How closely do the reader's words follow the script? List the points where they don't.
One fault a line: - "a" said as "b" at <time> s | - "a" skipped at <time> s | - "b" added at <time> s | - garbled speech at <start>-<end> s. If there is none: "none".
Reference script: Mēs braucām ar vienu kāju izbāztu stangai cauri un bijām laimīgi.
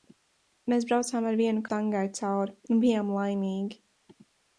- "kāju izbāztu" skipped at 1.6 s